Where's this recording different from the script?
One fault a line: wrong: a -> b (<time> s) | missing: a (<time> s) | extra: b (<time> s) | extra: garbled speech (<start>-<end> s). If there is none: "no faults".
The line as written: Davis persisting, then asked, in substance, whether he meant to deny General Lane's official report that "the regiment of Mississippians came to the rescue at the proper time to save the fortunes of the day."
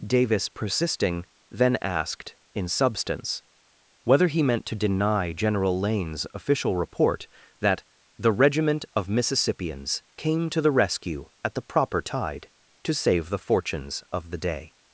wrong: time -> tide (12.0 s)